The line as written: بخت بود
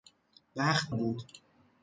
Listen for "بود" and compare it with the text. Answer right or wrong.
right